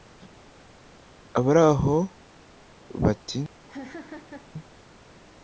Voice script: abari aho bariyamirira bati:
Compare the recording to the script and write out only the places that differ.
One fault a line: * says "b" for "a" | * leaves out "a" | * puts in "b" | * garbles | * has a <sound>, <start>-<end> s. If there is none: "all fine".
* leaves out "bariyamirira"
* has a laugh, 3.7-4.5 s